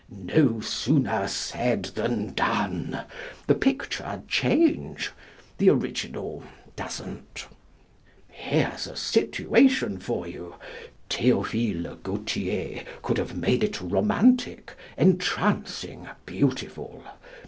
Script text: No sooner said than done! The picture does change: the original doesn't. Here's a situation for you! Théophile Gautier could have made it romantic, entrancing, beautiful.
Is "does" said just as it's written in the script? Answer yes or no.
no